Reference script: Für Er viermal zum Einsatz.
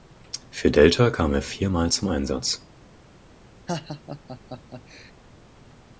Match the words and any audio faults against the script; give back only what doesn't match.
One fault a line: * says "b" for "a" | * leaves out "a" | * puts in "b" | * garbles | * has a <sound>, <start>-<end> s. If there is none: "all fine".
* puts in "Delta kam"
* has a laugh, 3.7-5.1 s